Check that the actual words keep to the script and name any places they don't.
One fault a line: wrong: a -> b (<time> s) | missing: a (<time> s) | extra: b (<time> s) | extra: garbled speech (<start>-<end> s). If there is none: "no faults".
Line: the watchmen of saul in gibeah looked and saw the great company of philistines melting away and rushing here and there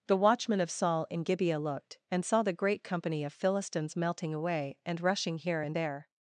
no faults